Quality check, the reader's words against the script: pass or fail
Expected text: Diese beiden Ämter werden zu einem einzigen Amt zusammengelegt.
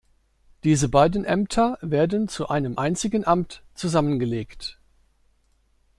pass